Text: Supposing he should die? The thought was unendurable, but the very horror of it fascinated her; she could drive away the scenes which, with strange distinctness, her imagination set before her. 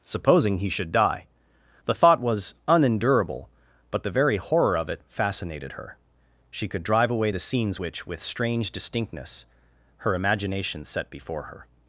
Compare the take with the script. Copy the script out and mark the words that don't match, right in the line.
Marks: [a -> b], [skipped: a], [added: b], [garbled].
Supposing he should die? The thought was unendurable, but the very horror of it fascinated her; she could drive away the scenes which, with strange distinctness, her imagination set before her.